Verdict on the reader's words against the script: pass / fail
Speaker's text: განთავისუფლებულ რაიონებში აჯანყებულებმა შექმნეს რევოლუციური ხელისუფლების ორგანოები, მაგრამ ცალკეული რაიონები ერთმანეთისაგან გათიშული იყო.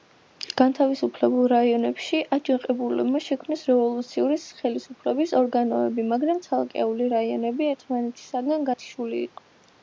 pass